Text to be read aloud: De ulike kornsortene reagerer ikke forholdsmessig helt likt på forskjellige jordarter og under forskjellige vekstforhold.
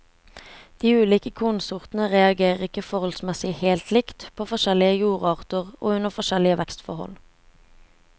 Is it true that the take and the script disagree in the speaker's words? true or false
false